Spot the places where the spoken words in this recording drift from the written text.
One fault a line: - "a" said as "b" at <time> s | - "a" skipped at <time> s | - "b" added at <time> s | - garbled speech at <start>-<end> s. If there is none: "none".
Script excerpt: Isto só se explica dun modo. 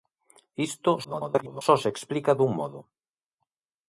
- garbled speech at 1.0-1.6 s